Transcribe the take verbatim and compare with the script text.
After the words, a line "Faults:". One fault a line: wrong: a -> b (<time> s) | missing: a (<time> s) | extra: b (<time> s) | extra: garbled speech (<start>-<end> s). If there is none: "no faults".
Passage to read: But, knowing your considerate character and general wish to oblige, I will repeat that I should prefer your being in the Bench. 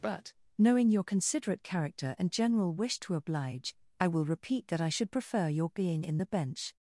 But, knowing your considerate character and general wish to oblige, I will repeat that I should prefer your being in the Bench.
Faults:
no faults